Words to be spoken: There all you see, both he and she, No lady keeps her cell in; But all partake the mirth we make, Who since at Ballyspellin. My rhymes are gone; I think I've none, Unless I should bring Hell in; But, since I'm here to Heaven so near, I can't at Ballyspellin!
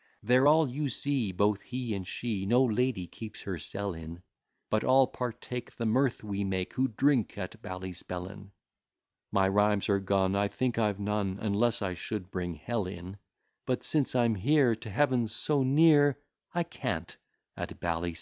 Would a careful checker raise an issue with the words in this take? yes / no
yes